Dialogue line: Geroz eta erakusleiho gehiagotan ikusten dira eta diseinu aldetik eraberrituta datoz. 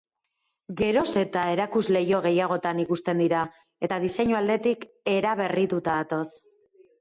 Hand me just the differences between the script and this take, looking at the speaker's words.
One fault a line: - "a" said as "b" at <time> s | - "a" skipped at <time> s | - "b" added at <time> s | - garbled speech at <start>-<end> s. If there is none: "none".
none